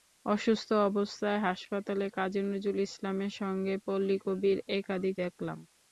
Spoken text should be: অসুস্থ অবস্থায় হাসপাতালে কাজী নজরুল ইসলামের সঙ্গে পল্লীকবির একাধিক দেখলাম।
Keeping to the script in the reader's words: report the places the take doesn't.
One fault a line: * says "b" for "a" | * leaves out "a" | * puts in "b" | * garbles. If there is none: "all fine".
all fine